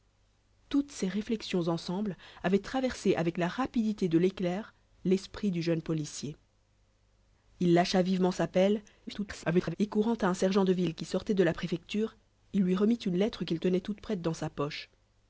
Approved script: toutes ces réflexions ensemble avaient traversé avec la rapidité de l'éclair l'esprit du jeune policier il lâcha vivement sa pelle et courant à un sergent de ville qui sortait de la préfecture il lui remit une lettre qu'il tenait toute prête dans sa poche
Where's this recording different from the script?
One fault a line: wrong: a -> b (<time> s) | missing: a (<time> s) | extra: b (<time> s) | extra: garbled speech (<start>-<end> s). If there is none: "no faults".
extra: garbled speech (9.1-9.8 s)